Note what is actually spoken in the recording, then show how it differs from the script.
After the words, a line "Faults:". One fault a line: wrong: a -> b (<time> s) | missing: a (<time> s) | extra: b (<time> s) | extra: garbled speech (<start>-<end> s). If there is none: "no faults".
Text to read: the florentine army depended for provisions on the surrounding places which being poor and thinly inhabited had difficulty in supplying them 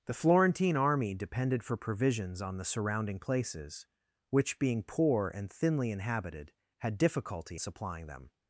the florentine army depended for provisions on the surrounding places which being poor and thinly inhabited had difficulty supplying them
Faults:
missing: in (7.6 s)